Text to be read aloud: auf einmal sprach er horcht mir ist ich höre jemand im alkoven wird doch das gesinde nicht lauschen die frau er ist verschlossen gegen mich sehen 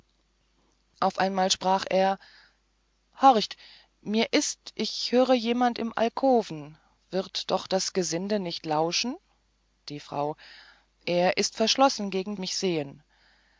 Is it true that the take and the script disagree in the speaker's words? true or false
false